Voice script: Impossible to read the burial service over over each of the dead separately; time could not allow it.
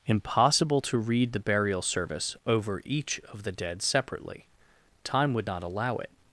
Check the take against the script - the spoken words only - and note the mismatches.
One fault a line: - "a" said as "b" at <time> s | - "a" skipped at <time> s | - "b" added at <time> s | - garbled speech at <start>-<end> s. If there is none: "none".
- "over" skipped at 2.8 s
- "could" said as "would" at 5.3 s